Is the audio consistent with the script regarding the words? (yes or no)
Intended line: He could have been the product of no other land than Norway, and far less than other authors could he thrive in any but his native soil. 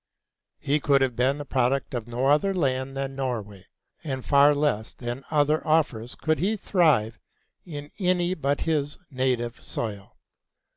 yes